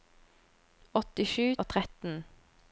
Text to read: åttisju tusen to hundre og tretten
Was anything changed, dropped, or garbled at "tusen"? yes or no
yes